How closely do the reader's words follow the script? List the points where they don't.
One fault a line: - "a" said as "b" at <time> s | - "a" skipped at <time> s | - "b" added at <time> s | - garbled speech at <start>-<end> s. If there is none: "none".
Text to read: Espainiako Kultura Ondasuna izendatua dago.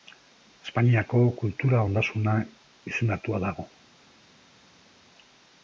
none